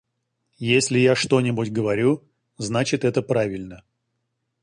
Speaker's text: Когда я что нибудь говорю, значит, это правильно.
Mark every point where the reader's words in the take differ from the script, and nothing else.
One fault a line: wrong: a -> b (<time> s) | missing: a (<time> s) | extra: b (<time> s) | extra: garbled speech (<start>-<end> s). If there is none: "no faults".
wrong: Когда -> Если (0.6 s)